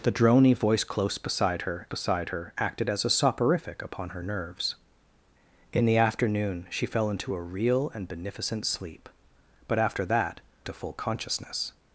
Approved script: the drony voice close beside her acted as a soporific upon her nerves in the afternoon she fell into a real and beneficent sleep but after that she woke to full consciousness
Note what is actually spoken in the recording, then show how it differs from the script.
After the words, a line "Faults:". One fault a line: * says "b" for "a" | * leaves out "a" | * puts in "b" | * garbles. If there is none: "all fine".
the drony voice close beside her beside her acted as a soporific upon her nerves in the afternoon she fell into a real and beneficent sleep but after that to full consciousness
Faults:
* puts in "beside her"
* leaves out "she woke"